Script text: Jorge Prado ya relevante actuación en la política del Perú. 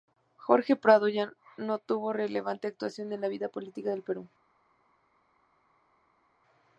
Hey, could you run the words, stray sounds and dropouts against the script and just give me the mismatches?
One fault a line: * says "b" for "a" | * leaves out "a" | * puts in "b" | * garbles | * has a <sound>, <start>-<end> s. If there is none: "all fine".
* puts in "no tuvo"
* puts in "vida"